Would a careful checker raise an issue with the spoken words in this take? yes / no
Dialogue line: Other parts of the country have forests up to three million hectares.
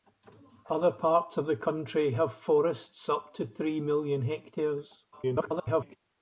yes